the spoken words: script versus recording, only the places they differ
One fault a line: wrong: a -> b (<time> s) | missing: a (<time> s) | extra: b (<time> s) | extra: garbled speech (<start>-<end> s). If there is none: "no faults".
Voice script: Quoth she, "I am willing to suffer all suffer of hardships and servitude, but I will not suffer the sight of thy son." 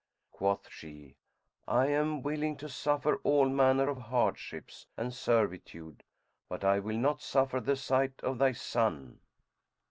wrong: suffer -> manner (3.5 s)